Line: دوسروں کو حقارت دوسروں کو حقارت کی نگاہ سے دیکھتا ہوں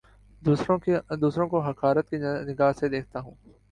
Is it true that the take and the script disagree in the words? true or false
true